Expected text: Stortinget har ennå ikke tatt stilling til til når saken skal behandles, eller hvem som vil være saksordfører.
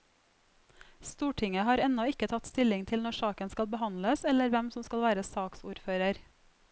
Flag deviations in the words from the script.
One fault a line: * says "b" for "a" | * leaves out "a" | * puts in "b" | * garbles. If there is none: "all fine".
* leaves out "til"
* says "skal" for "vil"